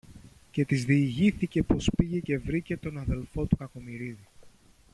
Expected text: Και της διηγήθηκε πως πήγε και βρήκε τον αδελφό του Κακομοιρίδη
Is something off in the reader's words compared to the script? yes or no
no